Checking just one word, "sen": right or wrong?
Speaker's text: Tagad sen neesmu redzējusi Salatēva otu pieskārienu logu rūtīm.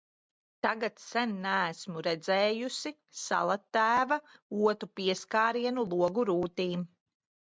right